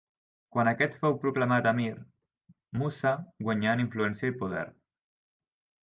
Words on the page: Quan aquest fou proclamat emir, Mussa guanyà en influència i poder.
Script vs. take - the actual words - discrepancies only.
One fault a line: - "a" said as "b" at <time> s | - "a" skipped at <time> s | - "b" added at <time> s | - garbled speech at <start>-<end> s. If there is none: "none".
none